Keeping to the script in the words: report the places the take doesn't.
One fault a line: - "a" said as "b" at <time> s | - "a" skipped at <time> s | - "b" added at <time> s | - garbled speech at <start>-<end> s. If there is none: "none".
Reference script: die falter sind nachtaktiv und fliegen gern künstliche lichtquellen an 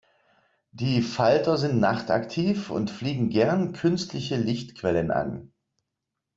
none